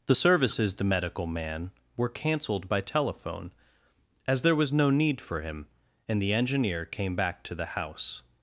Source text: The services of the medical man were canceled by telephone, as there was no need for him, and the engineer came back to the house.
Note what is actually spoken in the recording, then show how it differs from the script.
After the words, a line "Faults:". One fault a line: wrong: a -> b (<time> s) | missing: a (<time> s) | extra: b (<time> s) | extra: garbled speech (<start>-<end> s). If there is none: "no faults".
The services the medical man were canceled by telephone, as there was no need for him, and the engineer came back to the house.
Faults:
missing: of (0.7 s)